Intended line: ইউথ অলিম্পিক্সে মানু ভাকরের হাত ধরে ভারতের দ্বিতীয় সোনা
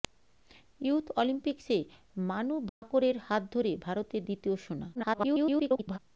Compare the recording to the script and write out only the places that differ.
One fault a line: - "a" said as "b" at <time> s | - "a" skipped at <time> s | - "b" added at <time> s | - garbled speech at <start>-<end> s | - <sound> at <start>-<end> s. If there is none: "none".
- dropout at 2.7-2.8 s
- garbled speech at 5.0-6.0 s